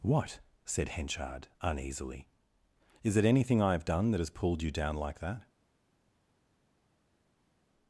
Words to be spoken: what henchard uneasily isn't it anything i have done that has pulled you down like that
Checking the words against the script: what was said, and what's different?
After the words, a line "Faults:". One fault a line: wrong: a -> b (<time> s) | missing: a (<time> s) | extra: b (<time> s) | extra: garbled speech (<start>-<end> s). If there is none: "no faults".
what said henchard uneasily is it anything i have done that has pulled you down like that
Faults:
extra: said (0.7 s)
wrong: isn't -> is (3.0 s)